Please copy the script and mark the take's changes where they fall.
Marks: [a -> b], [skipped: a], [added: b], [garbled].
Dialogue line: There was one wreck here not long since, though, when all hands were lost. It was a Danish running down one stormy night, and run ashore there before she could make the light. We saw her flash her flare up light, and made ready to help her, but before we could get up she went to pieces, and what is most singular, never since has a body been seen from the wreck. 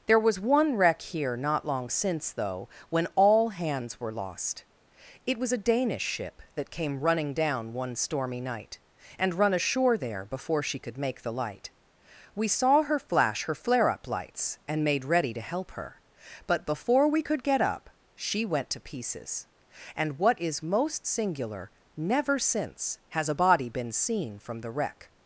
There was one wreck here not long since, though, when all hands were lost. It was a Danish [added: ship that came] running down one stormy night, and run ashore there before she could make the light. We saw her flash her flare up [light, -> lights] and made ready to help her, but before we could get up she went to pieces, and what is most singular, never since has a body been seen from the wreck.